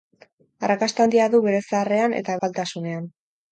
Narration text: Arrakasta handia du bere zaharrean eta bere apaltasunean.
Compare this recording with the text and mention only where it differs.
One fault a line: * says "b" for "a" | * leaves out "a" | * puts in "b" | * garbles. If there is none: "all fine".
* leaves out "bere"